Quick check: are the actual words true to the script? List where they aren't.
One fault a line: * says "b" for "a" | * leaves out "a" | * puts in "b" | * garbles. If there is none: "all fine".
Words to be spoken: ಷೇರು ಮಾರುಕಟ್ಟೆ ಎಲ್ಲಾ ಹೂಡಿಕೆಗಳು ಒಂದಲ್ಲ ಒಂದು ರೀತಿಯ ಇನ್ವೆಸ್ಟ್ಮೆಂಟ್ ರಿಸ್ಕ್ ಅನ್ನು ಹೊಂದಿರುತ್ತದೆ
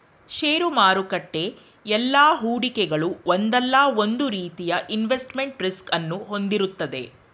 all fine